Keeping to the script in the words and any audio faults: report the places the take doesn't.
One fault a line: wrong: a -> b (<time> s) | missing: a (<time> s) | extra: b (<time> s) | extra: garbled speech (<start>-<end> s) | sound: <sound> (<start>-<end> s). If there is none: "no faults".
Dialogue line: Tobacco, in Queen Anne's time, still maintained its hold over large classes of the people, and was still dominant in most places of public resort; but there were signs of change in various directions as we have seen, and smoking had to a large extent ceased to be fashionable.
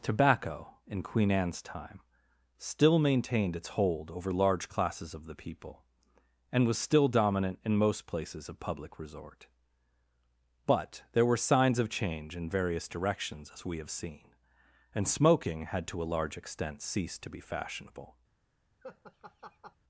sound: laugh (18.8-19.8 s)